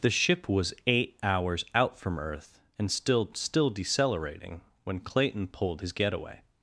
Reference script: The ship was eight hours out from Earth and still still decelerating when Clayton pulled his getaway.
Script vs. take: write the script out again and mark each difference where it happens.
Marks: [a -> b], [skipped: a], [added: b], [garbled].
The ship was eight hours out from Earth and still still decelerating when Clayton pulled his getaway.